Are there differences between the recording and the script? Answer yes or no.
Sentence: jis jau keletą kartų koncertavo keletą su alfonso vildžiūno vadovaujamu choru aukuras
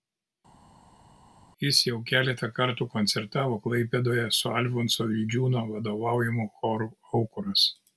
yes